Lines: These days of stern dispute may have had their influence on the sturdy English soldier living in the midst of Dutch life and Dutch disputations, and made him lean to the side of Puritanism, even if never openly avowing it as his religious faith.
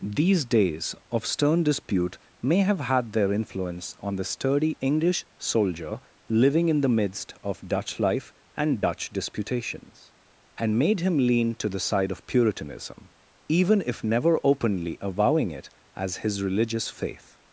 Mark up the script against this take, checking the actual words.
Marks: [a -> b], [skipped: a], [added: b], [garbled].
These days of stern dispute may have had their influence on the sturdy English soldier living in the midst of Dutch life and Dutch disputations, and made him lean to the side of Puritanism, even if never openly avowing it as his religious faith.